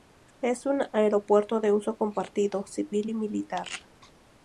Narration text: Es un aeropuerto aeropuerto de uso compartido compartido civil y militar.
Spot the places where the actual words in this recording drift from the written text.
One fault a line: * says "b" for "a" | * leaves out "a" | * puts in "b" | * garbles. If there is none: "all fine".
* leaves out "aeropuerto"
* leaves out "compartido"